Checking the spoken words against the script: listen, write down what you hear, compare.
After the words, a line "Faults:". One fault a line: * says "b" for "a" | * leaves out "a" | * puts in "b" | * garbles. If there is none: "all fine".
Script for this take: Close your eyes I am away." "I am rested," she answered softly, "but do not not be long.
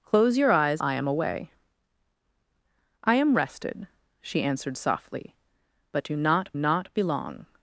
Close your eyes I am away." "I am rested," she answered softly, "but do not not be long.
Faults:
all fine